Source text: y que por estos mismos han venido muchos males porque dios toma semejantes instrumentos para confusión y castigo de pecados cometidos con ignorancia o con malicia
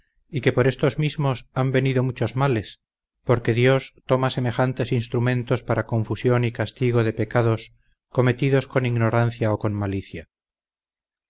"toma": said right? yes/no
yes